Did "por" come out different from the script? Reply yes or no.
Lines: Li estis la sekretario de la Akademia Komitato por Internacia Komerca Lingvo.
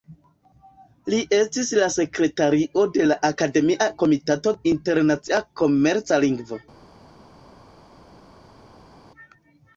yes